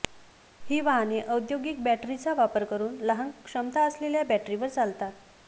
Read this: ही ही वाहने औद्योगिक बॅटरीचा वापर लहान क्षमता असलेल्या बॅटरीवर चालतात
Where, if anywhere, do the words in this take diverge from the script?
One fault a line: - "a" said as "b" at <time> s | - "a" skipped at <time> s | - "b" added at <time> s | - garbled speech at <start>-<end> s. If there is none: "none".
- "ही" skipped at 0.8 s
- "करून" added at 2.7 s